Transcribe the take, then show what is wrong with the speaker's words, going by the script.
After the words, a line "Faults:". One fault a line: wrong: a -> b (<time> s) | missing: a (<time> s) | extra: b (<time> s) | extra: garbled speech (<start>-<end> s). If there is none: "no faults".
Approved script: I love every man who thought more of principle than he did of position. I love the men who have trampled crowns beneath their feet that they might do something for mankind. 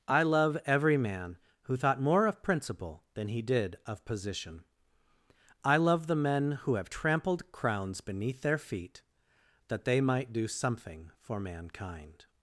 I love every man who thought more of principle than he did of position. I love the men who have trampled crowns beneath their feet that they might do something for mankind.
Faults:
no faults